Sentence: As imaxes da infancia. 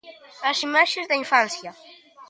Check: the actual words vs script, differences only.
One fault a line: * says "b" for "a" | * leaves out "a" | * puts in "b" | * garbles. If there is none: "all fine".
all fine